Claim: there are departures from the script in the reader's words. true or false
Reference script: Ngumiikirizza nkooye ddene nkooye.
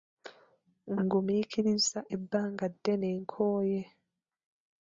true